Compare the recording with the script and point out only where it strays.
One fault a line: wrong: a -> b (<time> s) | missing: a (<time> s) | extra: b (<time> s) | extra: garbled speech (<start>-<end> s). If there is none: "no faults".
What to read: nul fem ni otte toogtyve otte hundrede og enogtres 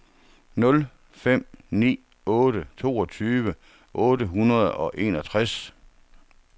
no faults